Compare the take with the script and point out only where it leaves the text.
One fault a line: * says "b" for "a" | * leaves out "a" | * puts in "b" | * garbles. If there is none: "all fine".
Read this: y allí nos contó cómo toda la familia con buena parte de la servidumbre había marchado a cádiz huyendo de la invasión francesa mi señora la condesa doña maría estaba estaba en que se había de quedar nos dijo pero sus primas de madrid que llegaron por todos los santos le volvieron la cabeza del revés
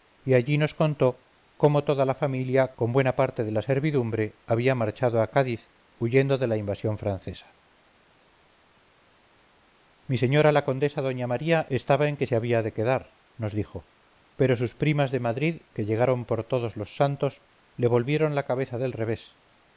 * leaves out "estaba"